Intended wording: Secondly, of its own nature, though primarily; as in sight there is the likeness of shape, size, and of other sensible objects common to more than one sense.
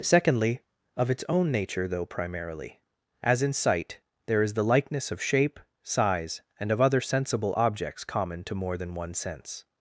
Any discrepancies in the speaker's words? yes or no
no